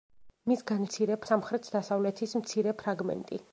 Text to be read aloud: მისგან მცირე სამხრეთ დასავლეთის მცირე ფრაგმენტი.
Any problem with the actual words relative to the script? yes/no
no